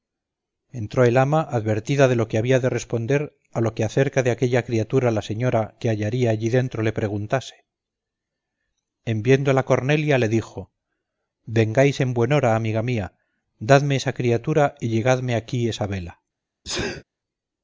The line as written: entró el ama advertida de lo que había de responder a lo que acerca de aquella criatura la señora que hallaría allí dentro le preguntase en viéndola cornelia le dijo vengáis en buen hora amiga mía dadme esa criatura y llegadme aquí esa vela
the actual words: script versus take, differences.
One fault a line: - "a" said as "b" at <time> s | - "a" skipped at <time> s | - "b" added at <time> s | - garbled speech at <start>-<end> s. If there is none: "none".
none